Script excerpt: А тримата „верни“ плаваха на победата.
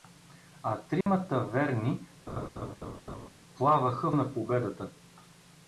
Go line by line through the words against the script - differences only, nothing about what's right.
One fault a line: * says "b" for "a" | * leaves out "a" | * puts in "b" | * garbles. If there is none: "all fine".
all fine